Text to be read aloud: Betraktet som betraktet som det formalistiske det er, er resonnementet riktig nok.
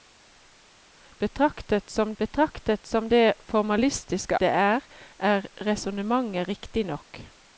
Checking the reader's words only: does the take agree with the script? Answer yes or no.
yes